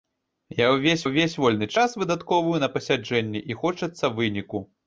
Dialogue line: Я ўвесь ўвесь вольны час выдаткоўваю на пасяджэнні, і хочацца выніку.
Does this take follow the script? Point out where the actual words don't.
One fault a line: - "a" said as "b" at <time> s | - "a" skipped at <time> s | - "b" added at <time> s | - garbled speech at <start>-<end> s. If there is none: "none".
none